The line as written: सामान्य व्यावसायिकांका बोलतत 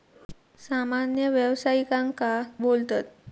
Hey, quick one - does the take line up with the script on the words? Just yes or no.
yes